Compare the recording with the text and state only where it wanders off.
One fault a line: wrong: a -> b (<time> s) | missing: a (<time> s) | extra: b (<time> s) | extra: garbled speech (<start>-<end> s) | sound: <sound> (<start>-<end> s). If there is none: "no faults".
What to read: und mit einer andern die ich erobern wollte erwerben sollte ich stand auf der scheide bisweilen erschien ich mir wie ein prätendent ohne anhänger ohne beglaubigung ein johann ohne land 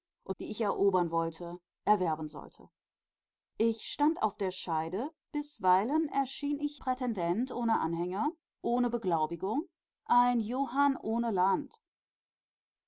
missing: mit einer andern (0.3 s)
missing: mir wie ein (6.8 s)